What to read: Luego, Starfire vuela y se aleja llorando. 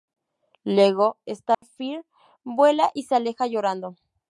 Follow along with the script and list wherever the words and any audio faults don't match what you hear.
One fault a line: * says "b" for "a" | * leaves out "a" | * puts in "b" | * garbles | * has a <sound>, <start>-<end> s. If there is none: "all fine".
* has a dropout, 1.5-1.6 s